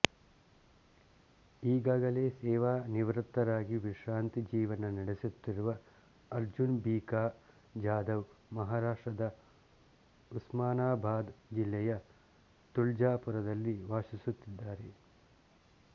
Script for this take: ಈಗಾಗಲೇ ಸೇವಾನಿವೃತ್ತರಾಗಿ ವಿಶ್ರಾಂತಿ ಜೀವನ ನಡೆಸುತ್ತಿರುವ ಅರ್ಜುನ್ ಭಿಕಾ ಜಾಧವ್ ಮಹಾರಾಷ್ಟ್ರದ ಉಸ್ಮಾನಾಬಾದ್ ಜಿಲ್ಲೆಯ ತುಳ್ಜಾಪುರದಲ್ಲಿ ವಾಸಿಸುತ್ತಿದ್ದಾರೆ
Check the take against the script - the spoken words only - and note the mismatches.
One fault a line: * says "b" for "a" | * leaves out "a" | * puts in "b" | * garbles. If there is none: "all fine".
all fine